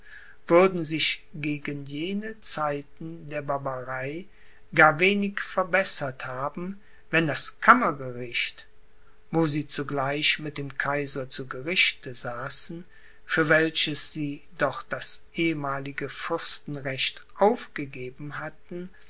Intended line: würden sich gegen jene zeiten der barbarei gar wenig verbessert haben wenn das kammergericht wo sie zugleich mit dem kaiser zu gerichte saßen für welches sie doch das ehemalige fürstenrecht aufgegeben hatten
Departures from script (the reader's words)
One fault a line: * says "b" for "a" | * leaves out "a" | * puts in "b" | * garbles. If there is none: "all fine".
all fine